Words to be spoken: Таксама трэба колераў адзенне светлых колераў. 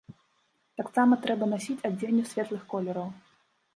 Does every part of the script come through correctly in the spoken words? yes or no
no